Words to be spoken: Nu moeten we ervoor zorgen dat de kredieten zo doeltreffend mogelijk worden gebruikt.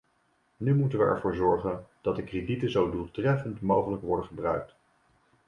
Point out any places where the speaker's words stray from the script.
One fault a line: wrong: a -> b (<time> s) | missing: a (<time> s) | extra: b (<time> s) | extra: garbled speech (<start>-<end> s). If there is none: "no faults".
no faults